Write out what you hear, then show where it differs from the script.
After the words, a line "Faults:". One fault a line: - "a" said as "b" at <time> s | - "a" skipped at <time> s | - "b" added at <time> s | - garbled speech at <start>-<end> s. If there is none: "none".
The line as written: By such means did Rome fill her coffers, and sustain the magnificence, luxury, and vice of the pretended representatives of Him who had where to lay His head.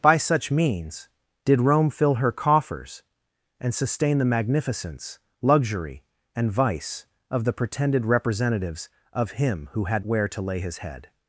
By such means did Rome fill her coffers, and sustain the magnificence, luxury, and vice of the pretended representatives of Him who had where to lay His head.
Faults:
none